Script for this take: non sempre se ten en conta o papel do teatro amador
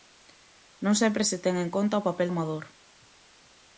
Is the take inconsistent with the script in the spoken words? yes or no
yes